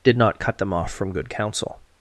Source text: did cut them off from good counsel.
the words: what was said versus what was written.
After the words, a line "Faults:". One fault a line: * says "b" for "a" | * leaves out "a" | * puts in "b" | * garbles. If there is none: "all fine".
did not cut them off from good counsel.
Faults:
* puts in "not"